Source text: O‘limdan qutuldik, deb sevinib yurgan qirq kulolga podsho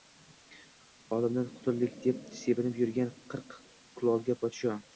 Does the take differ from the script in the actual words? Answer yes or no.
no